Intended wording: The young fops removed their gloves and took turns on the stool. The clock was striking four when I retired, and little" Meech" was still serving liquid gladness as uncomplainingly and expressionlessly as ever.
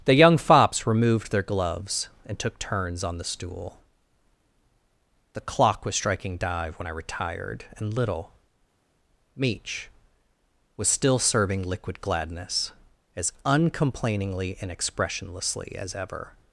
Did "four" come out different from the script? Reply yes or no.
yes